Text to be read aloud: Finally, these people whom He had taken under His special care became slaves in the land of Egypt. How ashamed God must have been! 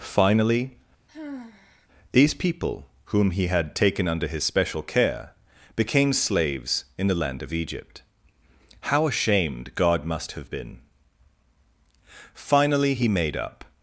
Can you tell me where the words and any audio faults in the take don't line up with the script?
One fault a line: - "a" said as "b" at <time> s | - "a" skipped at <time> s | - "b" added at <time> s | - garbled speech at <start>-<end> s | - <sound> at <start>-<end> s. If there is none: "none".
- sigh at 1.1-1.9 s
- "Finally He made up" added at 12.4 s